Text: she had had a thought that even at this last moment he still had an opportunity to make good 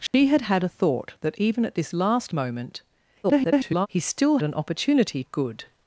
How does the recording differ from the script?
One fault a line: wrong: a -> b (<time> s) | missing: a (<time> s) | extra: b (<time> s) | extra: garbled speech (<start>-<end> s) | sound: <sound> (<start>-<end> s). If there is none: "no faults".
sound: dropout (0.1-0.1 s)
extra: garbled speech (3.2-3.9 s)
missing: had (4.4 s)
missing: to make (5.2 s)